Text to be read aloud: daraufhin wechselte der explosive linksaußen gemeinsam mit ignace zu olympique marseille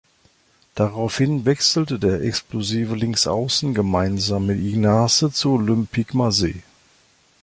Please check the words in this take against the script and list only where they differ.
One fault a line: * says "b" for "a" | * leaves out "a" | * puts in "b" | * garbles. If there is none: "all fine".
all fine